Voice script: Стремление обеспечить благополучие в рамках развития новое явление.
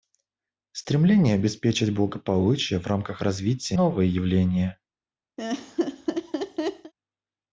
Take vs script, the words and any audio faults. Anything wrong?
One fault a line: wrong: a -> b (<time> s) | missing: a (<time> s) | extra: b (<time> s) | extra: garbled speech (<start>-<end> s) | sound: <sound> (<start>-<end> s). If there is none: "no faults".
sound: laugh (5.4-6.9 s)